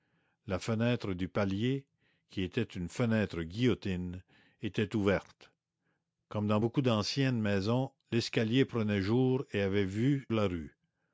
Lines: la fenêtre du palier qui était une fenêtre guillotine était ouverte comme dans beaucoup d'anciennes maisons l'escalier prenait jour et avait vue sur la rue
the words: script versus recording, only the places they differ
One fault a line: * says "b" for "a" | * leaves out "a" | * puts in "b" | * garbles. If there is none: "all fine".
* leaves out "sur"